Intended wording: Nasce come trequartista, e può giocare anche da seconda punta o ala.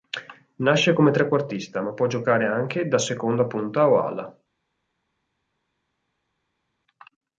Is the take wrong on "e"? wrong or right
wrong